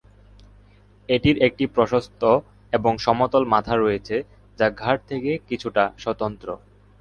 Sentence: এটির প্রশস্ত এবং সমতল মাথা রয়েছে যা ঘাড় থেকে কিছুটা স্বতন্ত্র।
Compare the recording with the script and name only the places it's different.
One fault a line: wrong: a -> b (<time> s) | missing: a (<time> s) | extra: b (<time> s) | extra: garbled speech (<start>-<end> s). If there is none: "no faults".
extra: একটি (1.4 s)